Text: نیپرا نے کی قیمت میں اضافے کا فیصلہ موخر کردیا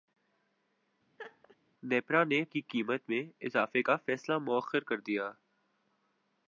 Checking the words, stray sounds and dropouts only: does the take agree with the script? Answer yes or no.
no